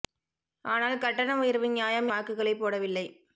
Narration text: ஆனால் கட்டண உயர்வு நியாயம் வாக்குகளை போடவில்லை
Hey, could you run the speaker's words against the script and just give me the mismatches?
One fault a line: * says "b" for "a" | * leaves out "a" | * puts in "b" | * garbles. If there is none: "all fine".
all fine